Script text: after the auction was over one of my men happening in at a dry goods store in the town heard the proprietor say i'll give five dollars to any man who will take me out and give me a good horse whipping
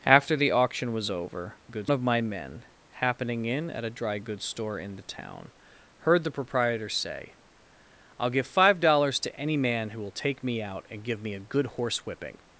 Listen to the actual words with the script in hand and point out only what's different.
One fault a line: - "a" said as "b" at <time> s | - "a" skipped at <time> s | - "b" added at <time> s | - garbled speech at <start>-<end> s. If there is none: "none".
- "one" said as "goods" at 1.7 s